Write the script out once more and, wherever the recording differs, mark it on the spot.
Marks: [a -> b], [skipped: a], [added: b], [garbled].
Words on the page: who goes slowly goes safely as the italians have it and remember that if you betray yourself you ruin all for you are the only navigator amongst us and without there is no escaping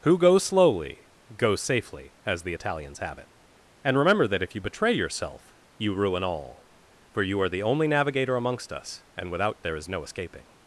who goes slowly goes safely as the italians have it and remember that if you betray yourself you ruin all for you are the only navigator amongst us and without there is no escaping